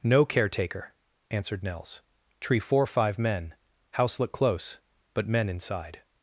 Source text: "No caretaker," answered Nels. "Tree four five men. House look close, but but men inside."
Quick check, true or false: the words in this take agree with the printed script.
false